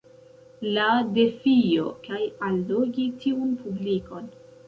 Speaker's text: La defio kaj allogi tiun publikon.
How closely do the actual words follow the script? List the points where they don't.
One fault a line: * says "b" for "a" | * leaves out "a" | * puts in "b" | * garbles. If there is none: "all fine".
all fine